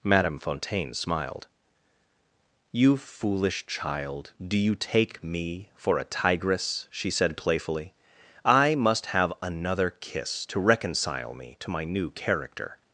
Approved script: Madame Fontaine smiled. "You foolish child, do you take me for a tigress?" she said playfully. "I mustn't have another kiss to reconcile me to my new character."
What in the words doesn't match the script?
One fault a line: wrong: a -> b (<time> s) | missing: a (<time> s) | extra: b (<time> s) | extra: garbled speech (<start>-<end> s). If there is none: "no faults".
wrong: mustn't -> must (8.7 s)